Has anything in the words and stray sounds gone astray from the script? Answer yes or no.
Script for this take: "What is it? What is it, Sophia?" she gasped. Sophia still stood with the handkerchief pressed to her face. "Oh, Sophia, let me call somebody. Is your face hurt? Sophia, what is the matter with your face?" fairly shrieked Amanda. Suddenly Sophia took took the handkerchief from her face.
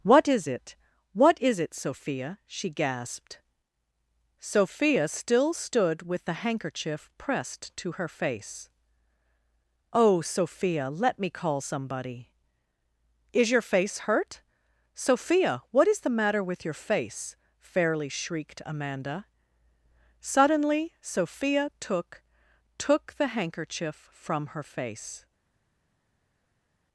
no